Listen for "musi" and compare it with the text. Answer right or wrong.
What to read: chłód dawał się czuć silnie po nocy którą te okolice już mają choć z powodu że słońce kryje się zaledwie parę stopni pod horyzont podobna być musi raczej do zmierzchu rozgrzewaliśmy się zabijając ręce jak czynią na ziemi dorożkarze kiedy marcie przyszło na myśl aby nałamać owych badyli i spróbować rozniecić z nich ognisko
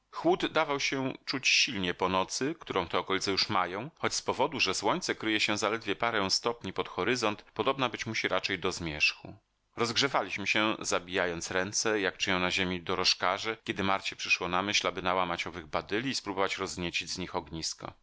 right